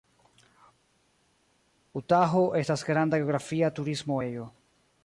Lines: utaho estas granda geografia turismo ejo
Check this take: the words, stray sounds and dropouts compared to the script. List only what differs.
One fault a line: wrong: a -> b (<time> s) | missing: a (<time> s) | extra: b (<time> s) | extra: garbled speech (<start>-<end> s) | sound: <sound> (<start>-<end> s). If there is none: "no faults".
no faults